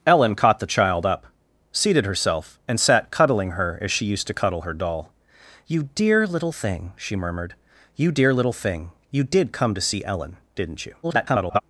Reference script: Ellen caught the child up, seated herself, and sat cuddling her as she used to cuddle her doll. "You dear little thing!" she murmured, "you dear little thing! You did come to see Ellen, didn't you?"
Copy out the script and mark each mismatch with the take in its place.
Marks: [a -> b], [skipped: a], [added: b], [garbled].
Ellen caught the child up, seated herself, and sat cuddling her as she used to cuddle her doll. "You dear little thing!" she murmured, "you dear little thing! You did come to see Ellen, didn't you?" [garbled]